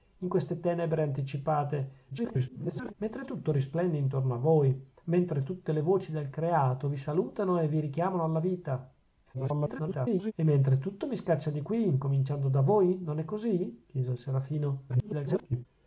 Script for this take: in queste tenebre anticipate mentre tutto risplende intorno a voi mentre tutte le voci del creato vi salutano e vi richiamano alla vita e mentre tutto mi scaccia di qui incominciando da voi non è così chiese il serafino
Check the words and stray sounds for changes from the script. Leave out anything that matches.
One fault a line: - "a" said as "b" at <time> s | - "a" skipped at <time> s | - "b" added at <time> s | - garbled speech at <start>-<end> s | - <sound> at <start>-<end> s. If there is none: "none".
- garbled speech at 2.1-2.9 s
- garbled speech at 9.3-10.3 s
- garbled speech at 14.9-15.7 s